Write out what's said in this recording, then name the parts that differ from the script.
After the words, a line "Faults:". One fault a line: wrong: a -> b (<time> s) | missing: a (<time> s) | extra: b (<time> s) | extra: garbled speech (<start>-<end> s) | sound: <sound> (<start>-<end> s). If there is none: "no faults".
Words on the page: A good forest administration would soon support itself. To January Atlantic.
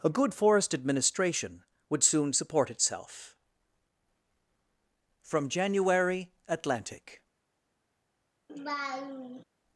A good forest administration would soon support itself. From January Atlantic.
Faults:
wrong: To -> From (5.2 s)
sound: laugh (8.5-9.4 s)